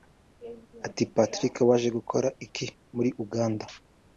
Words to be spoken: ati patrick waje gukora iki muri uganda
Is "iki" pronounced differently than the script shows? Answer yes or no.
no